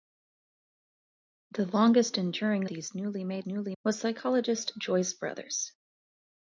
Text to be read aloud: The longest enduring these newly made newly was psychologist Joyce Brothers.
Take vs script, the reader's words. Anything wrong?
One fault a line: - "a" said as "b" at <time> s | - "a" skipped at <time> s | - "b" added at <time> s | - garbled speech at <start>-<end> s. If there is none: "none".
none